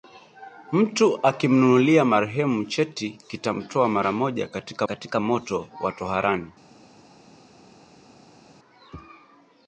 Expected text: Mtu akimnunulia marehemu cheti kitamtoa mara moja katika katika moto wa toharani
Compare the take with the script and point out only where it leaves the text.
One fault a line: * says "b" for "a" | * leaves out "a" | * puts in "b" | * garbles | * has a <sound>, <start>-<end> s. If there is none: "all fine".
all fine